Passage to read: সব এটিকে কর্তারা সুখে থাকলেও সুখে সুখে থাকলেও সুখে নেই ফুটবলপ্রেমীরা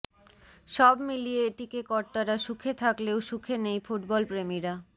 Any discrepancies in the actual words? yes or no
yes